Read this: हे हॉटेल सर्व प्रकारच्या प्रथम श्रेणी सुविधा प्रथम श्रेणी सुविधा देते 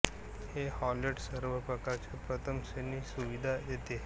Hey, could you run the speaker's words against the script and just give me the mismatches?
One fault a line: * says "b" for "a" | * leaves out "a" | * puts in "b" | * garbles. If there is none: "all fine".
* leaves out "प्रथम श्रेणी सुविधा"